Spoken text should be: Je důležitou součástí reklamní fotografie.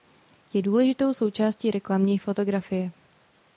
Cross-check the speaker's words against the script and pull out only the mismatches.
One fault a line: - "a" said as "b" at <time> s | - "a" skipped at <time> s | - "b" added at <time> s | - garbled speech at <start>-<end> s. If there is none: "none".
none